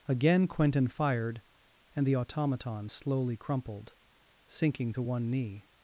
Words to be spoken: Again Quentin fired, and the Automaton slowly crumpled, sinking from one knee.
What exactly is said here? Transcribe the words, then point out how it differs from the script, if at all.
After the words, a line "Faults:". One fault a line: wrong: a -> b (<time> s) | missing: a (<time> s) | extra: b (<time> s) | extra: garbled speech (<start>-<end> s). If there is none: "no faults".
Again Quentin fired, and the Automaton slowly crumpled, sinking to one knee.
Faults:
wrong: from -> to (4.9 s)